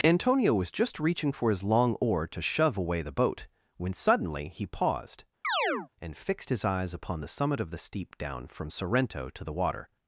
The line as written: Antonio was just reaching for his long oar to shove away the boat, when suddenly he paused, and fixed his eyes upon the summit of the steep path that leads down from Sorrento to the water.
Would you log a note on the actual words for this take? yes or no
yes